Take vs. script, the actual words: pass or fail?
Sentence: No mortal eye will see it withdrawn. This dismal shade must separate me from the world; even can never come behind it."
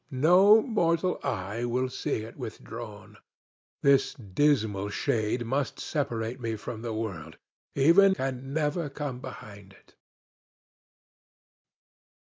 pass